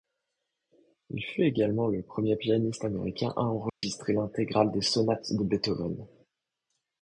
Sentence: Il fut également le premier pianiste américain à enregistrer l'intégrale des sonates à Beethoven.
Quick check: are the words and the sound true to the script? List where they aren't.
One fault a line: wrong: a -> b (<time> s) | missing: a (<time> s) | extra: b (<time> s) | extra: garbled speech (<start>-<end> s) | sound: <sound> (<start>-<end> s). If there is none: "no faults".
sound: dropout (3.7-3.8 s)
wrong: à -> de (5.3 s)